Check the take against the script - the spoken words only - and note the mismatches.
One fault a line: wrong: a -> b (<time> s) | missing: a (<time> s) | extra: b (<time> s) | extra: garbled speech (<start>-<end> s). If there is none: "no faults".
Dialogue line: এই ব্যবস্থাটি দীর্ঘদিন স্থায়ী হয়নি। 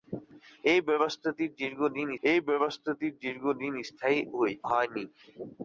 extra: এই ব্যবস্থাটি দীর্ঘদিন (2.2 s)